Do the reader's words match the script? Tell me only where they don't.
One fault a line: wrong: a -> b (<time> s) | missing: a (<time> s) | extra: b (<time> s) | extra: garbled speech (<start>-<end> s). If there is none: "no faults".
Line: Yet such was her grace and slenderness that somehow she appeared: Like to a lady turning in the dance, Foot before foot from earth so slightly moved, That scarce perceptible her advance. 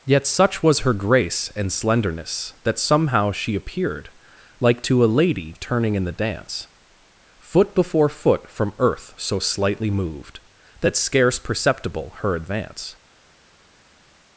no faults